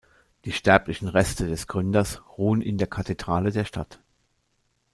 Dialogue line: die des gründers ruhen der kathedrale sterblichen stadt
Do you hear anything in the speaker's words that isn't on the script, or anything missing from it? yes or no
yes